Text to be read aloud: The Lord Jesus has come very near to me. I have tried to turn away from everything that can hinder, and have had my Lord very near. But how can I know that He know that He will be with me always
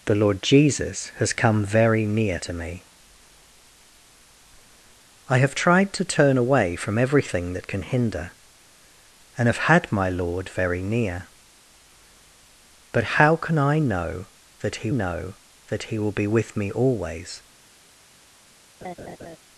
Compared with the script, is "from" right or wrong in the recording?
right